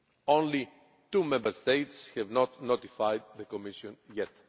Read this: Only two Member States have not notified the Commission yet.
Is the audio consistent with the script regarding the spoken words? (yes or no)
yes